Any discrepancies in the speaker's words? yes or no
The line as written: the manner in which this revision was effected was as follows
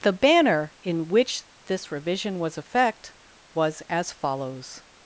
yes